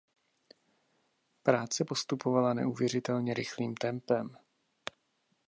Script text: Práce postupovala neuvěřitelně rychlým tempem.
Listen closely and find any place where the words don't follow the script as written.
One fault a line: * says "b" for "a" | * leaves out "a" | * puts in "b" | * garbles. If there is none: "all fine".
all fine